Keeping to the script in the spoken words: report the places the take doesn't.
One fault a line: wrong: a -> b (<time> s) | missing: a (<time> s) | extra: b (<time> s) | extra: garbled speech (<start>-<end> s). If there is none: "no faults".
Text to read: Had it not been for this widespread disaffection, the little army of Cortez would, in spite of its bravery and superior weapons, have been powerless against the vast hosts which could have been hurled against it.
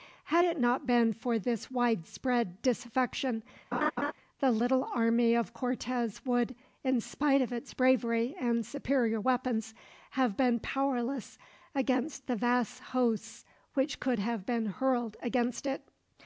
no faults